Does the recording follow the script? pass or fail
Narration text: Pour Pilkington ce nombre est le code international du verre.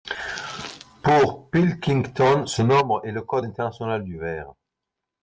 pass